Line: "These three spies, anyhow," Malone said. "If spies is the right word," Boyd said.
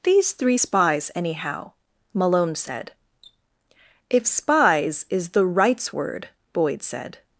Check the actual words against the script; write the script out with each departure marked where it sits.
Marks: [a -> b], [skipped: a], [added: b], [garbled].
"These three spies, anyhow," Malone said. "If spies is the [right -> rights] word," Boyd said.